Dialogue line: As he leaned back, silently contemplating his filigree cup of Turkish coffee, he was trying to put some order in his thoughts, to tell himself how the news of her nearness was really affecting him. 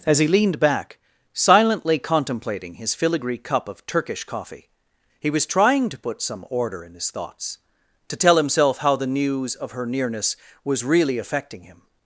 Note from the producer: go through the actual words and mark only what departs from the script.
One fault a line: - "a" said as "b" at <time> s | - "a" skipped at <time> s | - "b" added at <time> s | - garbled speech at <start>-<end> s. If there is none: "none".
none